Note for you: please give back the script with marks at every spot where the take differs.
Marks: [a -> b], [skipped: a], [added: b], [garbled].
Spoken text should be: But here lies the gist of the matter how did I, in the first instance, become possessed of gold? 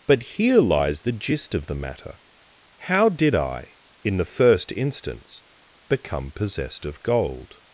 But here lies the gist of the matter how did I, in the first instance, become possessed of gold?